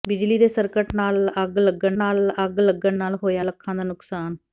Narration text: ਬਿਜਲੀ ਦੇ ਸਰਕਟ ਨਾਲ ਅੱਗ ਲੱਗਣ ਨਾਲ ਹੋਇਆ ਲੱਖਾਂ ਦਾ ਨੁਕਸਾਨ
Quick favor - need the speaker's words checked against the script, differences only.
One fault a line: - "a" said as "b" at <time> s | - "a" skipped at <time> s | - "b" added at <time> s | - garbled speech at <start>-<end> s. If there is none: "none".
- "ਅੱਗ ਲੱਗਣ ਨਾਲ" added at 2.4 s